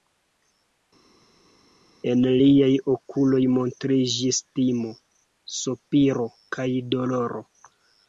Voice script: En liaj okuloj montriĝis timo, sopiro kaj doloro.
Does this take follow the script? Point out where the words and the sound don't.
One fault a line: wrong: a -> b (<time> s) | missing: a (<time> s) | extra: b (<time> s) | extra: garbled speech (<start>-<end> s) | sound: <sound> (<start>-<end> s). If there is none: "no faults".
no faults